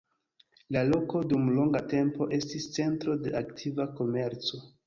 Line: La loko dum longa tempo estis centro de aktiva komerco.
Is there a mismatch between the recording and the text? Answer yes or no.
no